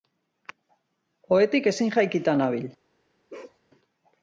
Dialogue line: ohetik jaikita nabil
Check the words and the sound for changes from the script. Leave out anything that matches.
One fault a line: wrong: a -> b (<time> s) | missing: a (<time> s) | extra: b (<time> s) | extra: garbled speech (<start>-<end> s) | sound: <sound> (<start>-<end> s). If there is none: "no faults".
extra: ezin (1.7 s)
sound: bark (3.3-3.6 s)